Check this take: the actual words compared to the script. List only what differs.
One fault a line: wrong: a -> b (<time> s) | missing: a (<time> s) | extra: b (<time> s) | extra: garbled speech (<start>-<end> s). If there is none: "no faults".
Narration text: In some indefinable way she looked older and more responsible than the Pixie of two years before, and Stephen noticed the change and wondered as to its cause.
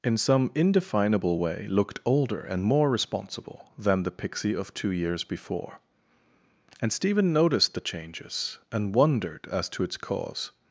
missing: she (1.7 s)
wrong: change -> changes (7.8 s)